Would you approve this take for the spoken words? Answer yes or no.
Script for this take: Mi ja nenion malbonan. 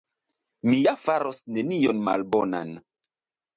no